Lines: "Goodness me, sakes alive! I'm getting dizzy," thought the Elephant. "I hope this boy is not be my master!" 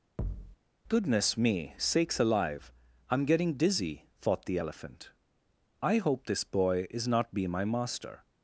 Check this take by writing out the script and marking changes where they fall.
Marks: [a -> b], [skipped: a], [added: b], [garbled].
"Goodness me, sakes alive! I'm getting dizzy," thought the Elephant. "I hope this boy is not be my master!"